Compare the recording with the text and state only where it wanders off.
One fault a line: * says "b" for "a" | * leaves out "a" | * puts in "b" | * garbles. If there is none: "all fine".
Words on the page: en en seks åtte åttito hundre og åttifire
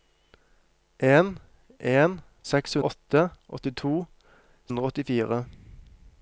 all fine